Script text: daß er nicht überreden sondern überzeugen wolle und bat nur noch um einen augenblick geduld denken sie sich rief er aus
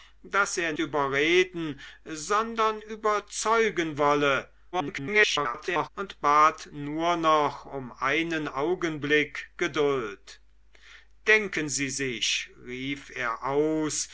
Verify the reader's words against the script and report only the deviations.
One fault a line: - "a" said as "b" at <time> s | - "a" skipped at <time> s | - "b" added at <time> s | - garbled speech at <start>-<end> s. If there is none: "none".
- "nicht" skipped at 0.7 s
- garbled speech at 4.7-5.9 s